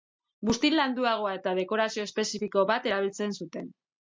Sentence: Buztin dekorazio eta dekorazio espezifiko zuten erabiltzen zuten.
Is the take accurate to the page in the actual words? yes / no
no